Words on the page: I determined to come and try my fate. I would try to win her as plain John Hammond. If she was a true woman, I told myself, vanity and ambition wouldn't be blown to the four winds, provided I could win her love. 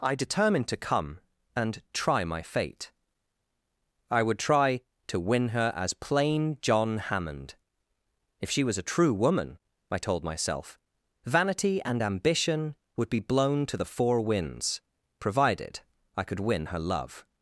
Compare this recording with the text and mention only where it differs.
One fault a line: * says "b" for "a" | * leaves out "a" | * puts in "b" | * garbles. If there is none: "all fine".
* says "would" for "wouldn't"